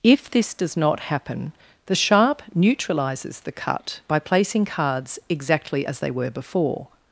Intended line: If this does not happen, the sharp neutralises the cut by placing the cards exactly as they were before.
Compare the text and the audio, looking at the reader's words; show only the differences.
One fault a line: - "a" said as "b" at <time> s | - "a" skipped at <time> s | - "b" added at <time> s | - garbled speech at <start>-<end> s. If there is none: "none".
- "the" skipped at 4.7 s